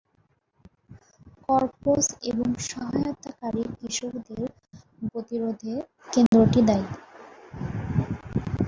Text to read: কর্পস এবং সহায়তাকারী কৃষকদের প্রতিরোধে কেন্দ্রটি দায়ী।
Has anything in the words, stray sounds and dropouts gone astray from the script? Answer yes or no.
yes